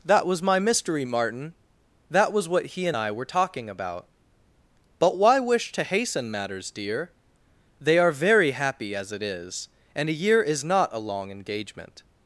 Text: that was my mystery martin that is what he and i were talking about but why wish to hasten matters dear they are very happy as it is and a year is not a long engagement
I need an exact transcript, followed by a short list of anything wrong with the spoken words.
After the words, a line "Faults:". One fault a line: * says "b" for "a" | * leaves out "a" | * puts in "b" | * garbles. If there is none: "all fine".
that was my mystery martin that was what he and i were talking about but why wish to hasten matters dear they are very happy as it is and a year is not a long engagement
Faults:
* says "was" for "is"